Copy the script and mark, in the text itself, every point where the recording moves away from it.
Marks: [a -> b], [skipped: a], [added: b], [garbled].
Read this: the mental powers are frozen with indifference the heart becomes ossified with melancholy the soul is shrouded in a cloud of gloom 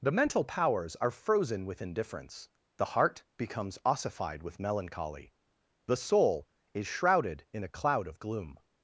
the mental powers are frozen with indifference the heart becomes ossified with melancholy the soul is shrouded in a cloud of gloom